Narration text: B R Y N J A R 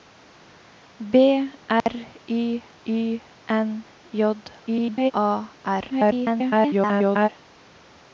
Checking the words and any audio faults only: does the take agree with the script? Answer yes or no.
no